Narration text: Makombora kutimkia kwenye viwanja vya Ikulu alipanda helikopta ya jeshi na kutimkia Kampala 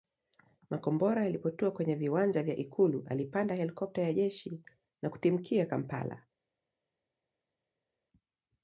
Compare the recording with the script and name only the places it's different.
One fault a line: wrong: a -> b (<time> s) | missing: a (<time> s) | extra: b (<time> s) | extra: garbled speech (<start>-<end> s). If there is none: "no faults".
wrong: kutimkia -> yalipotua (1.2 s)